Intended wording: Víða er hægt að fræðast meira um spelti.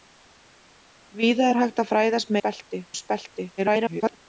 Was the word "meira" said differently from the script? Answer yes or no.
yes